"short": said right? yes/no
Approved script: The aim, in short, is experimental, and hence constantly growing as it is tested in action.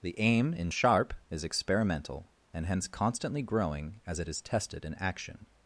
no